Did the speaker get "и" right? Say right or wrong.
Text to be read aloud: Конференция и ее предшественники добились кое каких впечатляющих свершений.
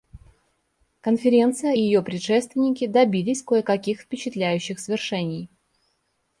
wrong